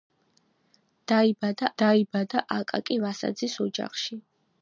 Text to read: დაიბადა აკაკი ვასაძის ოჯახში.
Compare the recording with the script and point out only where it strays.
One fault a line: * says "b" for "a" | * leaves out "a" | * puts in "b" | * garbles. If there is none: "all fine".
* puts in "დაიბადა"